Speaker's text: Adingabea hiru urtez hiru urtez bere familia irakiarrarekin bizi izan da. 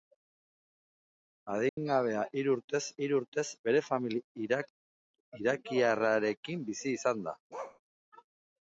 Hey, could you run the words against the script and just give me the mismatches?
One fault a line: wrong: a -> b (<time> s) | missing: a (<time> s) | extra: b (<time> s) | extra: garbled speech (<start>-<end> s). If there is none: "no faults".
no faults